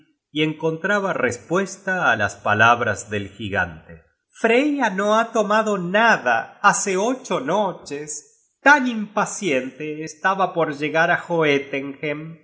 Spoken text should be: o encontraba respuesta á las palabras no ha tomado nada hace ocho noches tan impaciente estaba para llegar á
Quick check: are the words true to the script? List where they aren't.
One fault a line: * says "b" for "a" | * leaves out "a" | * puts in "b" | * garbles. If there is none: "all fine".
* says "y" for "o"
* puts in "del gigante freya"
* says "por" for "para"